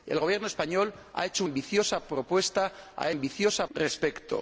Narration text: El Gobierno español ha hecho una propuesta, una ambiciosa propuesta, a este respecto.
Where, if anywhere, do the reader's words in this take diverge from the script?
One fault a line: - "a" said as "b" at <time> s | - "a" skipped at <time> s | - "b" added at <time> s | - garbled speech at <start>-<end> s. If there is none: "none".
- "una propuesta una" skipped at 1.4 s
- "este" said as "ambiciosa" at 3.1 s